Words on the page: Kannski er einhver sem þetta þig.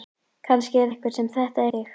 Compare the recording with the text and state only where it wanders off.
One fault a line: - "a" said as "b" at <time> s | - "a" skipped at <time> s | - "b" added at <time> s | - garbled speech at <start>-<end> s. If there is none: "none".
none